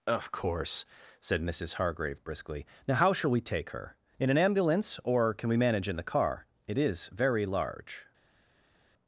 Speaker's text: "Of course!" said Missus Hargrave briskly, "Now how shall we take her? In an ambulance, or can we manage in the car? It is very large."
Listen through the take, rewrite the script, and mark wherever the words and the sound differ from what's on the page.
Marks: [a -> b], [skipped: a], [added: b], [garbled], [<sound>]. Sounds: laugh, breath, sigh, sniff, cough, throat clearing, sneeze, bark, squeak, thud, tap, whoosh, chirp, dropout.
"Of course!" said Missus Hargrave briskly, "Now how shall we take her? In an ambulance, or can we manage in the car? It is very large."